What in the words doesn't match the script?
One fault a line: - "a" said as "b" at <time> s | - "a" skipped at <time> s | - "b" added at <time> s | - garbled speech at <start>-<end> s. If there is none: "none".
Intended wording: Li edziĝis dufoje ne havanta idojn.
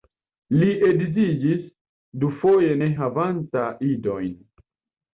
none